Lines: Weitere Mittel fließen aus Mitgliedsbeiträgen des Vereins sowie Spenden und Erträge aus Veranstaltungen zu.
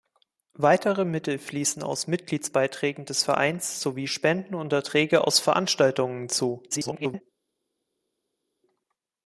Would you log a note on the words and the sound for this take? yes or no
yes